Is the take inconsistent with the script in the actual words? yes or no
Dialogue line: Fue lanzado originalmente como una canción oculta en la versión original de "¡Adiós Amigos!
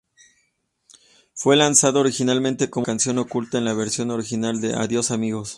yes